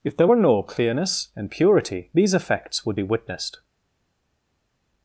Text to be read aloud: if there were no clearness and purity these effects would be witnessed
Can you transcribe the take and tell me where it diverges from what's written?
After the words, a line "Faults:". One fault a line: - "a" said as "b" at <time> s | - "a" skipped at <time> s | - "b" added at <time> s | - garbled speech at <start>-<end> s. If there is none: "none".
if there were no clearness and purity these effects would be witnessed
Faults:
none